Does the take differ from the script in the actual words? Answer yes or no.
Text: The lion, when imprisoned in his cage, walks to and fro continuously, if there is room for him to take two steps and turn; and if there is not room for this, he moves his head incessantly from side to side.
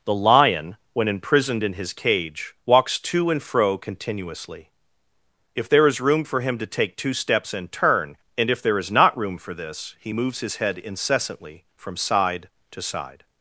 no